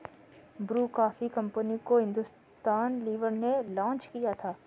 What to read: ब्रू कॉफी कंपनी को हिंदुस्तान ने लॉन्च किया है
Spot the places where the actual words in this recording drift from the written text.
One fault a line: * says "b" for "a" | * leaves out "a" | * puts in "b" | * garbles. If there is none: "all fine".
* puts in "लीवर"
* says "था" for "है"